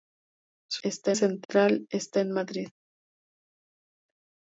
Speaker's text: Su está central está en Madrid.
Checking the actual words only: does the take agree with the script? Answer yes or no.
yes